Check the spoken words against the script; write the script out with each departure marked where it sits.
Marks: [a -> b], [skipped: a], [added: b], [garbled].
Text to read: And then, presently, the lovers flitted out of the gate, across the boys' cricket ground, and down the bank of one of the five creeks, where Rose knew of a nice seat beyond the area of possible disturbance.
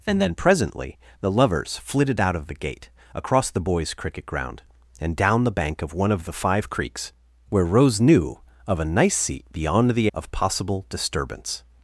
And then, presently, the lovers flitted out of the gate, across the boys' cricket ground, and down the bank of one of the five creeks, where Rose knew of a nice seat beyond the [skipped: area] of possible disturbance.